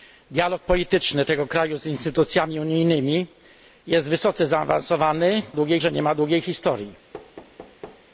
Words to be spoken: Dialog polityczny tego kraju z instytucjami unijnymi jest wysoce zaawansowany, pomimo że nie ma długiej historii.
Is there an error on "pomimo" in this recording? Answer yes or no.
yes